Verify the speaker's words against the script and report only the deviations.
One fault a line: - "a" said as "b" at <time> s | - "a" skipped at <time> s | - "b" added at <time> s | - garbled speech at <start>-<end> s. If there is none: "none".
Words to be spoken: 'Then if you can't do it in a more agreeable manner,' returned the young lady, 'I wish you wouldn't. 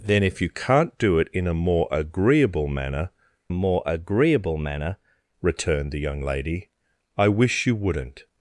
- "more agreeable manner" added at 3.5 s